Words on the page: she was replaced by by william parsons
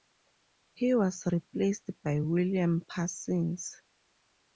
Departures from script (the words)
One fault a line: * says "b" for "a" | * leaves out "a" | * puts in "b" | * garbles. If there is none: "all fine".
* says "he" for "she"
* leaves out "by"